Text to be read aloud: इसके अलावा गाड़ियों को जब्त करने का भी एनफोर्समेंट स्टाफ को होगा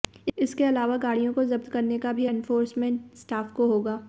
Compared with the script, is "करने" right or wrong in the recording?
right